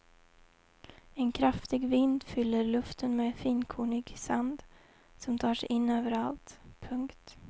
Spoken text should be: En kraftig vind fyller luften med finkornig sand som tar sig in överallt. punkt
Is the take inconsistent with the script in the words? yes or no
no